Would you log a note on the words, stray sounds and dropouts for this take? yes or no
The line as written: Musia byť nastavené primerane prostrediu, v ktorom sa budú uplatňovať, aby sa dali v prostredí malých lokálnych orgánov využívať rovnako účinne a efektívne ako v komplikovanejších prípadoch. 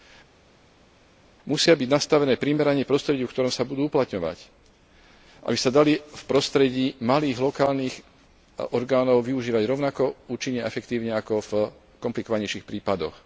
no